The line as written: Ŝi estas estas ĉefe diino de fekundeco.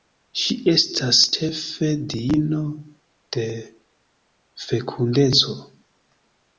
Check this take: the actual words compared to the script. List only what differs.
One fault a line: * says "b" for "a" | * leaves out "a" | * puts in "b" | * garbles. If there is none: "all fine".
* leaves out "estas"